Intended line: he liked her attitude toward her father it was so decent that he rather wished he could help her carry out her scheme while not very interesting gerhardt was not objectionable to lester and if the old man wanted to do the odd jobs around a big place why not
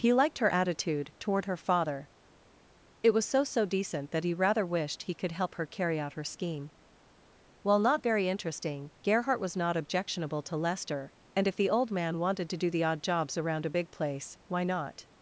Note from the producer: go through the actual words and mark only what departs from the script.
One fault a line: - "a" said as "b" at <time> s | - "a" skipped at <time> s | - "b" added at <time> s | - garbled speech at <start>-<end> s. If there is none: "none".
- "so" added at 3.4 s